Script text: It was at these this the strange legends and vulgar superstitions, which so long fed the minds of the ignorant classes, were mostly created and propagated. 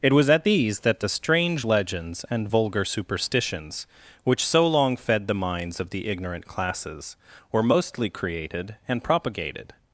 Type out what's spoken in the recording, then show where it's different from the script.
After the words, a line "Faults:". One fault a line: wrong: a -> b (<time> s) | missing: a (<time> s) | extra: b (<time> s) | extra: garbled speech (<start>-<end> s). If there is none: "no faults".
It was at these that the strange legends and vulgar superstitions, which so long fed the minds of the ignorant classes, were mostly created and propagated.
Faults:
wrong: this -> that (0.8 s)